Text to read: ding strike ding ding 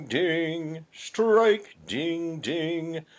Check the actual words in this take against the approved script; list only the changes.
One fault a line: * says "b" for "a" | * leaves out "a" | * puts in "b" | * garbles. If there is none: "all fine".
all fine